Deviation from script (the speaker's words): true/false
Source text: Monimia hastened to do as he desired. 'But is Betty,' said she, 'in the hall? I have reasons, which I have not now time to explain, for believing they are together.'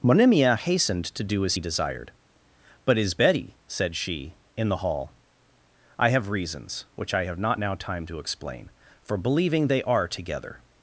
false